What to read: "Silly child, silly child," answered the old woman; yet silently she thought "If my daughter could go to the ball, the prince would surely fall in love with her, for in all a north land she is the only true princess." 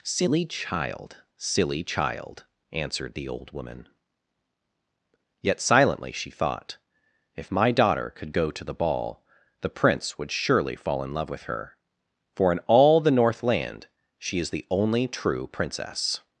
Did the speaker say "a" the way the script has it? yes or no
no